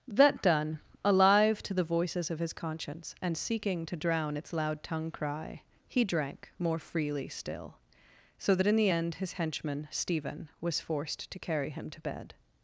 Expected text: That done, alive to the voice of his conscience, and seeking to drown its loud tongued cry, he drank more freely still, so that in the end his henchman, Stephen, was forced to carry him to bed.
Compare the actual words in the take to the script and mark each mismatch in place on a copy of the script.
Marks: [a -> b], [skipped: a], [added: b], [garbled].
That done, alive to the [voice -> voices] of his conscience, and seeking to drown its loud [tongued -> tongue] cry, he drank more freely still, so that in the end his henchman, Stephen, was forced to carry him to bed.